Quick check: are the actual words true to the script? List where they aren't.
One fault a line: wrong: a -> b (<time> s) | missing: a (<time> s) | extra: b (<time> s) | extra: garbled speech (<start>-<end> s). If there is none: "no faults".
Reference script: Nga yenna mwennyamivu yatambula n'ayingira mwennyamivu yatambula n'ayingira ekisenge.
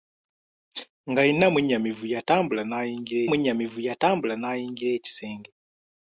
no faults